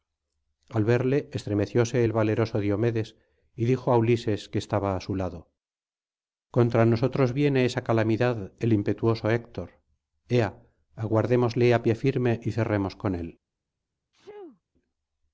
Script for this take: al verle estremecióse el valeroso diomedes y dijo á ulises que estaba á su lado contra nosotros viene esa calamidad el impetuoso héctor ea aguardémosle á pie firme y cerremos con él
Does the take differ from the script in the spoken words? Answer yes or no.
no